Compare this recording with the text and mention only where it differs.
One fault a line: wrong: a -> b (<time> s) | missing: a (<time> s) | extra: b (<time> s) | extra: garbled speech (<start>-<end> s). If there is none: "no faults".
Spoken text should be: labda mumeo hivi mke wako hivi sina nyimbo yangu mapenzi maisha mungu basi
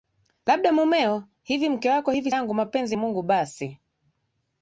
missing: sina nyimbo (2.3 s)
missing: maisha (3.0 s)